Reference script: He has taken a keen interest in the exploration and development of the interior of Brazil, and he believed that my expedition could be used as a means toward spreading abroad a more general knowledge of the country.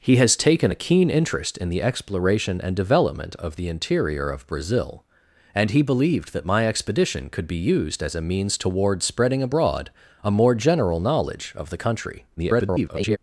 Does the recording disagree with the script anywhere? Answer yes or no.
yes